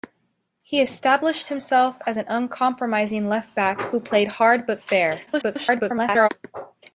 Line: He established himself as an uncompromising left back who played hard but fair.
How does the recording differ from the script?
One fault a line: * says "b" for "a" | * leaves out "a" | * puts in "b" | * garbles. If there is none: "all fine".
* garbles